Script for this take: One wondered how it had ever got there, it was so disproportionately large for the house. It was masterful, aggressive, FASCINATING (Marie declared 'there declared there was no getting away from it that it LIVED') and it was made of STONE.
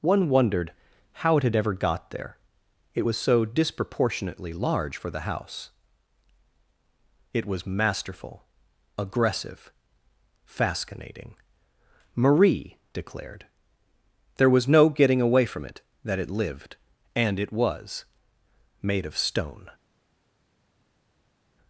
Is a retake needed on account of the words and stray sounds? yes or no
yes